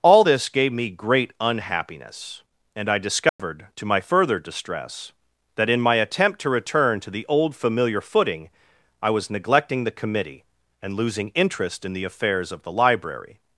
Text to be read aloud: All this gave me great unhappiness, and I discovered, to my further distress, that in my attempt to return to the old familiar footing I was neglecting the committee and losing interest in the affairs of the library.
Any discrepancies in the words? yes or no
no